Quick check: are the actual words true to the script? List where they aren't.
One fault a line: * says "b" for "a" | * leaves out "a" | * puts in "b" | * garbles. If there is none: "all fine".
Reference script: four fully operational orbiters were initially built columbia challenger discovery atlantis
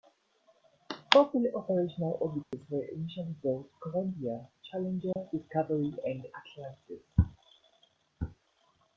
* puts in "and"